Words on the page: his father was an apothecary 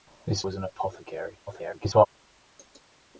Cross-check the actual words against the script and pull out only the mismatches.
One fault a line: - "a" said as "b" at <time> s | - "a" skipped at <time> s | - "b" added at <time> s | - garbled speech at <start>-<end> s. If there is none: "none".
- "father" skipped at 0.4 s
- garbled speech at 1.5-2.1 s